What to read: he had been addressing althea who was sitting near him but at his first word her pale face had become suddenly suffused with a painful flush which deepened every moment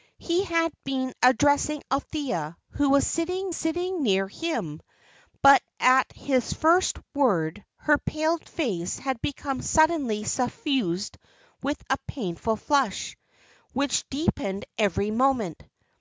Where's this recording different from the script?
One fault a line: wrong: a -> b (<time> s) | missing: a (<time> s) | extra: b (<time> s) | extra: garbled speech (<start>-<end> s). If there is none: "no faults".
extra: sitting (3.5 s)